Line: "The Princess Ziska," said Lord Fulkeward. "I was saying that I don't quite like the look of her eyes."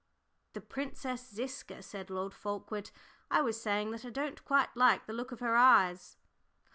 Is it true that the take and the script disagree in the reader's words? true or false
false